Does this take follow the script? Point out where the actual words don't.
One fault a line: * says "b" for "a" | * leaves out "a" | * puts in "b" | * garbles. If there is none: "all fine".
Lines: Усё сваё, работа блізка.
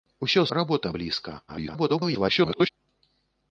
* leaves out "сваё"
* garbles